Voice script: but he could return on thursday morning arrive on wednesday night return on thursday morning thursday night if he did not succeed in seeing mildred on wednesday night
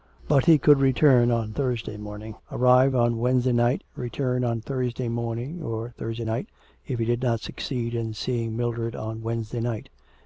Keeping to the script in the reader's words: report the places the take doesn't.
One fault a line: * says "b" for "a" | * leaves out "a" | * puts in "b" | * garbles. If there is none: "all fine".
* puts in "or"